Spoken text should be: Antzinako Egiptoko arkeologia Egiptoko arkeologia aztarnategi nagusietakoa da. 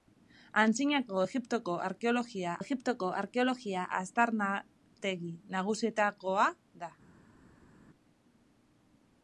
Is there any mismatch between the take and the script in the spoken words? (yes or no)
no